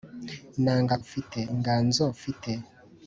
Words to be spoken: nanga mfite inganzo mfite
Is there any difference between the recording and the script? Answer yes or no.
no